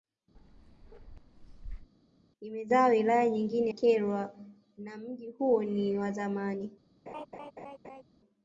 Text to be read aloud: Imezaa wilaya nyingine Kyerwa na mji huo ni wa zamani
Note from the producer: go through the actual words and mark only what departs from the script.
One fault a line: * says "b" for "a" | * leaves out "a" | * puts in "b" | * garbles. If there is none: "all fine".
all fine